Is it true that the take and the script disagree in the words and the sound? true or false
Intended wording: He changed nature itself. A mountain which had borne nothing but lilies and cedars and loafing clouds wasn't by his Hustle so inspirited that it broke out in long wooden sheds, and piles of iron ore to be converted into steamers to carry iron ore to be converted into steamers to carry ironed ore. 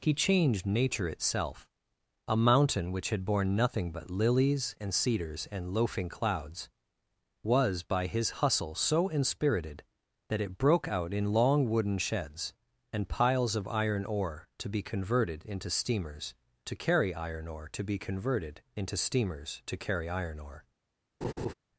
true